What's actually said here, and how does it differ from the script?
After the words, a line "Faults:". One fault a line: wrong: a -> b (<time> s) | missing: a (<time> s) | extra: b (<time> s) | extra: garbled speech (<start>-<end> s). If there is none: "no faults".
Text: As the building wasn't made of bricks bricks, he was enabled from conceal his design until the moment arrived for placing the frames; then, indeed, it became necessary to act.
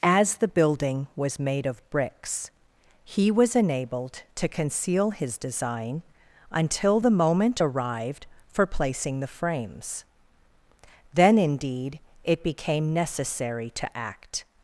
As the building was made of bricks, he was enabled to conceal his design until the moment arrived for placing the frames; then, indeed, it became necessary to act.
Faults:
wrong: wasn't -> was (1.2 s)
missing: bricks (2.5 s)
wrong: from -> to (4.4 s)